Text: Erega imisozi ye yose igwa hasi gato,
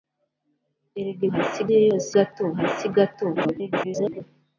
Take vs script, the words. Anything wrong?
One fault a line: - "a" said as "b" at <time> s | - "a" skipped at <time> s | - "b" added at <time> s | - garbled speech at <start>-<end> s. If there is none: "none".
- "imisozi" said as "hasi" at 1.3 s
- "igwa" said as "gato" at 2.1 s
- garbled speech at 3.4-4.2 s